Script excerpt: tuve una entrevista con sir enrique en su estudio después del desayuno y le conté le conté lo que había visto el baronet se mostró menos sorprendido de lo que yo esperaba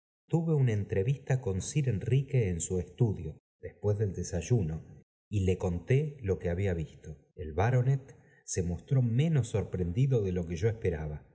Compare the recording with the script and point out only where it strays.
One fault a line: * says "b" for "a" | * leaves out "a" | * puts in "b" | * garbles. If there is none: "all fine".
* leaves out "le conté"